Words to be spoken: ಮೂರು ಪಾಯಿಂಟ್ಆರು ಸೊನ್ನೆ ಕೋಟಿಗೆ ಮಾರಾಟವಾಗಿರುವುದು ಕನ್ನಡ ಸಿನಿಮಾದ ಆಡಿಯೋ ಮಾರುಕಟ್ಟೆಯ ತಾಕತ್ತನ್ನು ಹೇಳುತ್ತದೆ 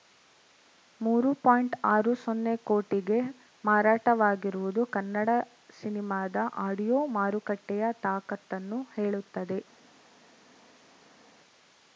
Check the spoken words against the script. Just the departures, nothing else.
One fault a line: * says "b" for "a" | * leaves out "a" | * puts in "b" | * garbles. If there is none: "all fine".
all fine